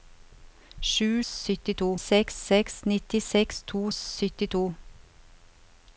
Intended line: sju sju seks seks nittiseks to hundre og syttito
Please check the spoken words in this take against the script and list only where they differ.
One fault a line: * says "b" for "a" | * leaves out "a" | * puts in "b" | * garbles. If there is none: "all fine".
* says "syttito" for "sju"
* leaves out "hundre"